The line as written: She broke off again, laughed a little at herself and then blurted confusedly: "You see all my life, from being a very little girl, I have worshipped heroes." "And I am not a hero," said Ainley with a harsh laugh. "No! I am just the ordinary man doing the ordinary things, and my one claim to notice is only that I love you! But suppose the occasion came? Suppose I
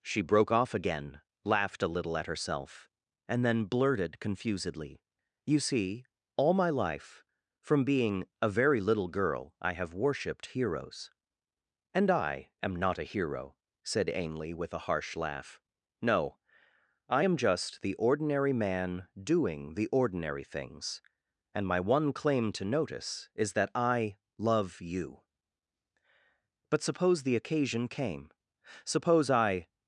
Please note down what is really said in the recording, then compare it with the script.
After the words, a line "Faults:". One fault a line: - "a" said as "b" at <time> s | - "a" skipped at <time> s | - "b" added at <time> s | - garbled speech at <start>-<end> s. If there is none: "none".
She broke off again, laughed a little at herself and then blurted confusedly: "You see all my life, from being a very little girl, I have worshipped heroes." "And I am not a hero," said Ainley with a harsh laugh. "No! I am just the ordinary man doing the ordinary things, and my one claim to notice is that I love you! But suppose the occasion came? Suppose I
Faults:
- "only" skipped at 23.5 s